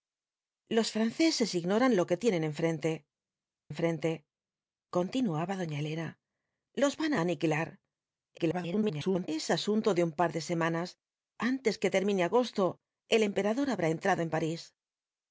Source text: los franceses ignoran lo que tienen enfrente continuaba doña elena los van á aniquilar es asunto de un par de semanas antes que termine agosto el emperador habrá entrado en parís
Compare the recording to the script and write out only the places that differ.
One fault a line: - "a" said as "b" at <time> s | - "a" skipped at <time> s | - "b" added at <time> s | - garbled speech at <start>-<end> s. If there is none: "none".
- "enfrente" added at 3.7 s
- garbled speech at 8.4-9.3 s